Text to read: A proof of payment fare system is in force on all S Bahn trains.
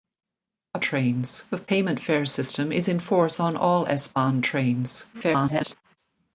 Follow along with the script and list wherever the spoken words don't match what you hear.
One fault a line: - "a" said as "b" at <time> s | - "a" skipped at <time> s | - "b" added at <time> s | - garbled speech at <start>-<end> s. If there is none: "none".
- "proof" said as "trains" at 0.8 s
- garbled speech at 5.1-5.8 s